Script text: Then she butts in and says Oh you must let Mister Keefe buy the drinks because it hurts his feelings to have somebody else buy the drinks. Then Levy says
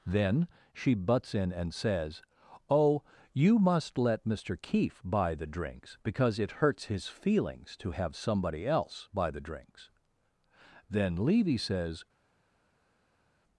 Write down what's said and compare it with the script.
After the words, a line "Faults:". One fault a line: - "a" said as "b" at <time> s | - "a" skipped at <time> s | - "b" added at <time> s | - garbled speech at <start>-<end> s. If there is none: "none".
Then she butts in and says Oh you must let Mister Keefe buy the drinks because it hurts his feelings to have somebody else buy the drinks. Then Levy says
Faults:
none